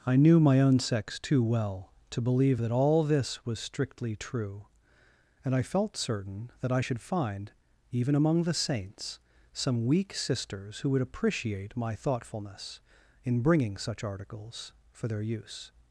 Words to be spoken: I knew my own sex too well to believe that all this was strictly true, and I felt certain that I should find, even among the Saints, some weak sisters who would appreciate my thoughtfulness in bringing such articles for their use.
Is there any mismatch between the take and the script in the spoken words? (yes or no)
no